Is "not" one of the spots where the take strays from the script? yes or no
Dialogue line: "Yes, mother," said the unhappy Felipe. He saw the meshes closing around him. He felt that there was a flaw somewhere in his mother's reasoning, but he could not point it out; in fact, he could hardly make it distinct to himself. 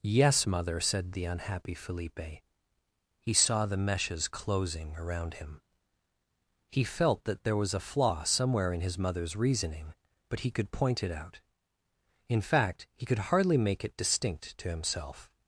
yes